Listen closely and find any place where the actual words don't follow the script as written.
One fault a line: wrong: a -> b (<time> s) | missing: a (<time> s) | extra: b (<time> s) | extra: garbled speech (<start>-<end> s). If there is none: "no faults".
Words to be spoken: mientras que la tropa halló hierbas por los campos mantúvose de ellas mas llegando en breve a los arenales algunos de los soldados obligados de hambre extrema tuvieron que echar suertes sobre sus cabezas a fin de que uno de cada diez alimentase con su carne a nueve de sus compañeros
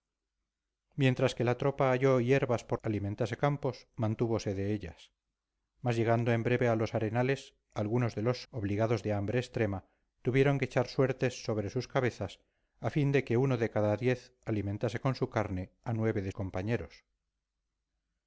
wrong: los -> alimentase (2.8 s)
missing: soldados (8.4 s)
missing: sus (16.3 s)